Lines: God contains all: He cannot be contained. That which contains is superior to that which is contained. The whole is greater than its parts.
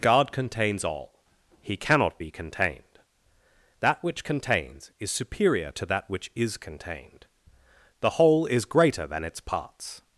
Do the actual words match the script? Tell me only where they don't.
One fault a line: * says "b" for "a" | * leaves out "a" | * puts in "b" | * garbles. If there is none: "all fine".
all fine